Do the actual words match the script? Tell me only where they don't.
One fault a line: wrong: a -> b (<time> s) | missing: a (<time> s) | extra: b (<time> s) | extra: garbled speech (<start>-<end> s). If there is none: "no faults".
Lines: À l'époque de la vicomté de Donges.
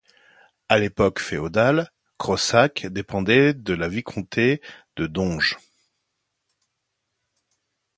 extra: féodale Crossac dépendait (1.2 s)